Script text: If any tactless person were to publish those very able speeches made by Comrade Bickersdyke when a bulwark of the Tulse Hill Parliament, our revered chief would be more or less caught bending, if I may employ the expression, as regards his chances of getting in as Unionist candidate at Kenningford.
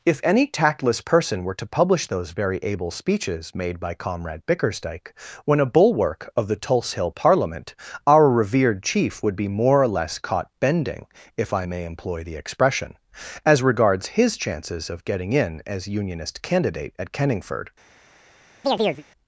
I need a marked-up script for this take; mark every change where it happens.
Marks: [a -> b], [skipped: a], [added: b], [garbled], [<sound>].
If any tactless person were to publish those very able speeches made by Comrade Bickersdyke when a bulwark of the Tulse Hill Parliament, our revered chief would be more or less caught bending, if I may employ the expression, as regards his chances of getting in as Unionist candidate at Kenningford. [chirp]